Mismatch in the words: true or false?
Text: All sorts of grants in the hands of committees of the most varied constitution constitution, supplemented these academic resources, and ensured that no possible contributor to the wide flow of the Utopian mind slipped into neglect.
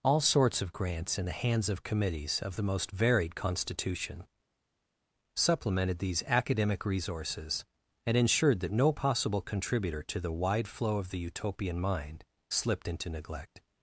true